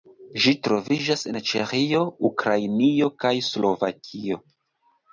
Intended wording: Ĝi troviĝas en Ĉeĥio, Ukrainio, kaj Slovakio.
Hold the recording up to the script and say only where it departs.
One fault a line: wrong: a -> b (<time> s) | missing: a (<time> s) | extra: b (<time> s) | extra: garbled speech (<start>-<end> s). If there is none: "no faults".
no faults